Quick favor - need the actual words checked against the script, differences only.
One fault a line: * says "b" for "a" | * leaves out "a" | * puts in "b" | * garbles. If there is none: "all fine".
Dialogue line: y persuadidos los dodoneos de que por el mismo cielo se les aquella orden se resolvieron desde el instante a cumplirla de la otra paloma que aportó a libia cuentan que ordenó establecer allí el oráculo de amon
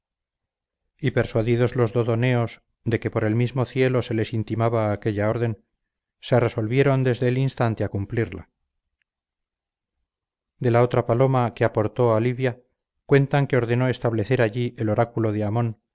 * puts in "intimaba"